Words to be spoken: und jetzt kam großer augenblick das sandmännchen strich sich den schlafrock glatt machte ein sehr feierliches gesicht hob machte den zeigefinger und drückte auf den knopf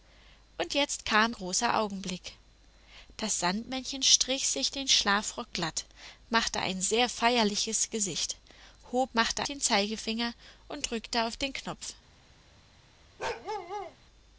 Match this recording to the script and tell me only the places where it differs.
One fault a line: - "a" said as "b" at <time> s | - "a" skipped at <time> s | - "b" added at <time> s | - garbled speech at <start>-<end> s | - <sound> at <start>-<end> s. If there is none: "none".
- bark at 13.2-14.0 s